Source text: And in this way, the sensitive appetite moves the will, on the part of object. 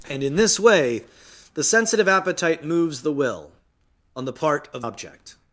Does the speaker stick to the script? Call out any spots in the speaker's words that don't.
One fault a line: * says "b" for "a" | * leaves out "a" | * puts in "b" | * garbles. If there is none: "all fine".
all fine